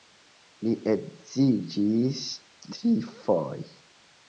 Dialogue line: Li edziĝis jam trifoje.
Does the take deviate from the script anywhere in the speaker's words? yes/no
yes